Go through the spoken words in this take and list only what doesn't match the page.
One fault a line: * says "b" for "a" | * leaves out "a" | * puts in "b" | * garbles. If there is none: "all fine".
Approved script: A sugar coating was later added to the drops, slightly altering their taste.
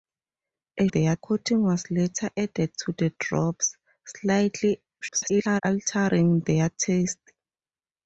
* says "their" for "sugar"
* garbles